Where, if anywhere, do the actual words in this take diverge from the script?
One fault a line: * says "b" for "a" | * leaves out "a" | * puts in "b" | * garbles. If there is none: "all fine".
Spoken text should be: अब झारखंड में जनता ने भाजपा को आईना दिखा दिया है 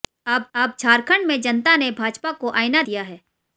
* puts in "अब"
* leaves out "दिखा"